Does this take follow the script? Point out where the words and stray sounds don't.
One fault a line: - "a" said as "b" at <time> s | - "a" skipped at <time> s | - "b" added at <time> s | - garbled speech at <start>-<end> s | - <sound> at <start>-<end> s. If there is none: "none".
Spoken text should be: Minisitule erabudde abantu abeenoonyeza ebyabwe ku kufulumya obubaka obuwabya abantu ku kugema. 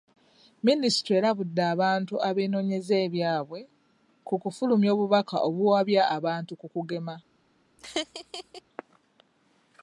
- laugh at 7.8-8.6 s